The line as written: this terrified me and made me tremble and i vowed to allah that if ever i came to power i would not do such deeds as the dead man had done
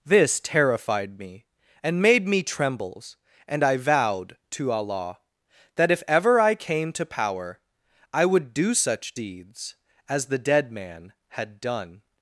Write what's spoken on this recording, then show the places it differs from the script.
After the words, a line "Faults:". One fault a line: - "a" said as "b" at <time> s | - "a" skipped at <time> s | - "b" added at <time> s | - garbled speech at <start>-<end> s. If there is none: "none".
this terrified me and made me trembles and i vowed to allah that if ever i came to power i would do such deeds as the dead man had done
Faults:
- "tremble" said as "trembles" at 2.4 s
- "not" skipped at 8.5 s